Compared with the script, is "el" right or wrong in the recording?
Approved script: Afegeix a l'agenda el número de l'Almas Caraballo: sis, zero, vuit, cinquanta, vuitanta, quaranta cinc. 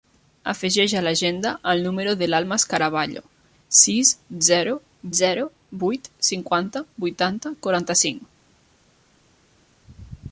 right